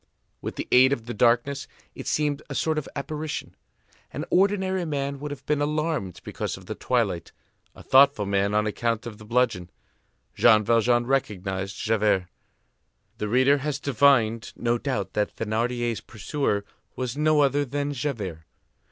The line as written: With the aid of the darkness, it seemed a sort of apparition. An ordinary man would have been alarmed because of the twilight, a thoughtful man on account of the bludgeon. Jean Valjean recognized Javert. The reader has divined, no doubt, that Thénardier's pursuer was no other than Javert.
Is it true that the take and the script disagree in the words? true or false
false